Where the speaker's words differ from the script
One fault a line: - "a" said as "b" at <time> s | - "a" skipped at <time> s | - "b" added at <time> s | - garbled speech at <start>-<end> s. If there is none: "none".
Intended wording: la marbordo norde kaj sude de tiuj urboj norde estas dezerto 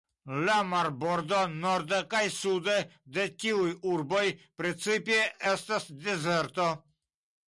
- "norde" said as "precipe" at 4.6 s